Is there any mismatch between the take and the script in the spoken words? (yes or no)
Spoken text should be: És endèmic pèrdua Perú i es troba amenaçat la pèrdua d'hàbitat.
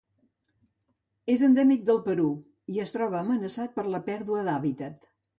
yes